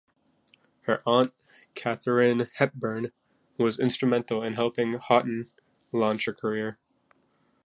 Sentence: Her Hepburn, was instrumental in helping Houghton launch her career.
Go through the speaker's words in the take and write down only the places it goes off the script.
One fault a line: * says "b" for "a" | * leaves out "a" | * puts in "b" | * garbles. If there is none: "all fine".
* puts in "aunt Katharine"